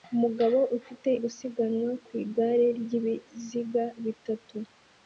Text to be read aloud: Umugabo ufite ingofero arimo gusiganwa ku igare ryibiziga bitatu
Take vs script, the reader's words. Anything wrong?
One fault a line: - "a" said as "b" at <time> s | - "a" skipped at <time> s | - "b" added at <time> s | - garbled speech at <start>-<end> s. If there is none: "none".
- "ingofero arimo" skipped at 1.1 s